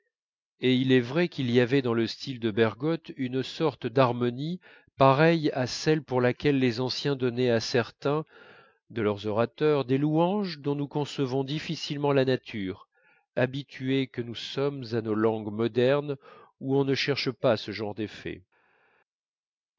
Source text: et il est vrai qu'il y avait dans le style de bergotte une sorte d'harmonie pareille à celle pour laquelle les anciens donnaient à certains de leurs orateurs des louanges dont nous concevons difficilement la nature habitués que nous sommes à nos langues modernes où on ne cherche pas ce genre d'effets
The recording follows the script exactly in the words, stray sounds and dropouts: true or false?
true